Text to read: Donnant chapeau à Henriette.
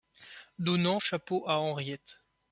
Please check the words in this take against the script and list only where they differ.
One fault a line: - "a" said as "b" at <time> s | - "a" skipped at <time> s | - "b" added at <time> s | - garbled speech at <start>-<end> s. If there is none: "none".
none